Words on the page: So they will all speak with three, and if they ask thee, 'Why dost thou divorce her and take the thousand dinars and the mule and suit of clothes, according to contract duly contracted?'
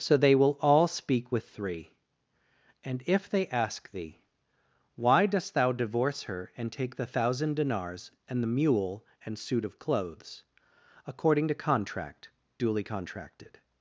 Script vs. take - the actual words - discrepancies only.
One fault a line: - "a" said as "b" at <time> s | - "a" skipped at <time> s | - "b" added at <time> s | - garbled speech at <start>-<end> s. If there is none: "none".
none